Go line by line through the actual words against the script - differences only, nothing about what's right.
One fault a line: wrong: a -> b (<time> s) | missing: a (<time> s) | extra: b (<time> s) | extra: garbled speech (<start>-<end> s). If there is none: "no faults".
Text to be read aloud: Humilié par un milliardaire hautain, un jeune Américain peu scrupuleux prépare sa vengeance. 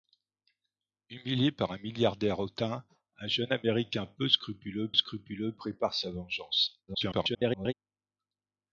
extra: scrupuleux (4.9 s)
extra: garbled speech (6.9-7.7 s)